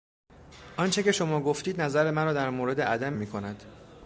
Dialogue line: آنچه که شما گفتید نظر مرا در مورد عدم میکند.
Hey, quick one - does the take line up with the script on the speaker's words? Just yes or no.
yes